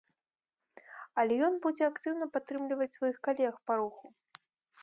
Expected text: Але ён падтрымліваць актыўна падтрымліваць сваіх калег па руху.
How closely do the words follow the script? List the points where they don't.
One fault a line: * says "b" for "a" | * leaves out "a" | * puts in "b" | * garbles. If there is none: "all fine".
* says "будзе" for "падтрымліваць"